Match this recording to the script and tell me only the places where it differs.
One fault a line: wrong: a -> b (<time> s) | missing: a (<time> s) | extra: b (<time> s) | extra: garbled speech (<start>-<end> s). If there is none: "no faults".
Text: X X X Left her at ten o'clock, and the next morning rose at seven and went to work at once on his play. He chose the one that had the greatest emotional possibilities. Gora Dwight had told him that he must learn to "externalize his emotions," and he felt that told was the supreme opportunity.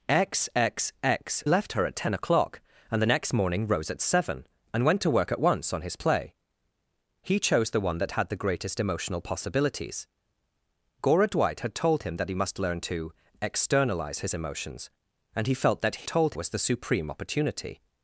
no faults